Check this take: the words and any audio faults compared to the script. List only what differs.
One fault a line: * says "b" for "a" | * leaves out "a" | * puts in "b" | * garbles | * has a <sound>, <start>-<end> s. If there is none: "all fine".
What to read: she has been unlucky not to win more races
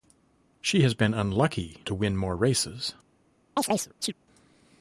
* leaves out "not"
* has a chirp, 3.6-4.1 s